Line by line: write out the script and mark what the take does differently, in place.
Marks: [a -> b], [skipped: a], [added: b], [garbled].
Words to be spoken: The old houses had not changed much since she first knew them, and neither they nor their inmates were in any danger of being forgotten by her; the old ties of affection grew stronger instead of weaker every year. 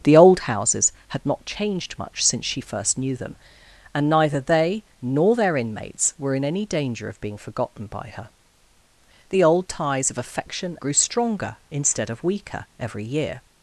The old houses had not changed much since she first knew them, and neither they nor their inmates were in any danger of being forgotten by her; the old ties of affection grew stronger instead of weaker every year.